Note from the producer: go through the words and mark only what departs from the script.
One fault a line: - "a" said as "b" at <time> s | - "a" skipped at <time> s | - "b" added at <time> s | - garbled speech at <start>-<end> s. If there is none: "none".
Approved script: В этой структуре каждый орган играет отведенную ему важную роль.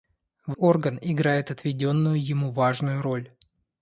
- "этой структуре каждый" skipped at 0.6 s